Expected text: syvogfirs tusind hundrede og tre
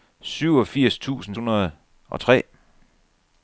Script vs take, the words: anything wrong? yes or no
no